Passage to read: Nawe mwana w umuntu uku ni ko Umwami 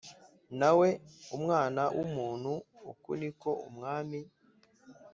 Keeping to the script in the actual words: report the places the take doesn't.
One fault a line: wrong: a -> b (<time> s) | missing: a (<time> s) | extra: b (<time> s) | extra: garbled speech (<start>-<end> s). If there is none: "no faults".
no faults